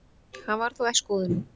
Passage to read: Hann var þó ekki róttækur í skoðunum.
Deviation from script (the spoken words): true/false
true